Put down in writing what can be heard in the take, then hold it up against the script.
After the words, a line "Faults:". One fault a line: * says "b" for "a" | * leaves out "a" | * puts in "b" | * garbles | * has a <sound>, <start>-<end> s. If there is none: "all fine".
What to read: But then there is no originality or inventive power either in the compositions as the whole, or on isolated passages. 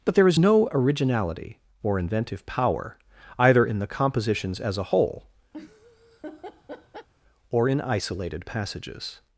But there is no originality or inventive power either in the compositions as a whole, or in isolated passages.
Faults:
* leaves out "then"
* says "a" for "the"
* has a laugh, 5.5-7.1 s
* says "in" for "on"